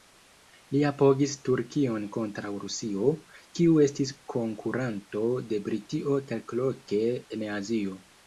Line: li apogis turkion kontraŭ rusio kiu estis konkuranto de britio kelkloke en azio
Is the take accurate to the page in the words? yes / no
yes